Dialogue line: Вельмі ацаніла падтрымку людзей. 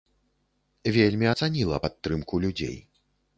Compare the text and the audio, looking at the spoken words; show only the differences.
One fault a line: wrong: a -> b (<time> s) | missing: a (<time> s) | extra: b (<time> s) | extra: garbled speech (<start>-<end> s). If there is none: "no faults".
no faults